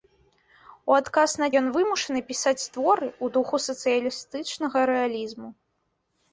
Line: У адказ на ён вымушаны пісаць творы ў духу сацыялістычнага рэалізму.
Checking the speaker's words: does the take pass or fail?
pass